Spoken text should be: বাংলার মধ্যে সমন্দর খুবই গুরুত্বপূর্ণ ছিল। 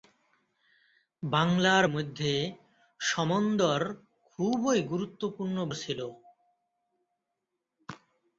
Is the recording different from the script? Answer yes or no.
no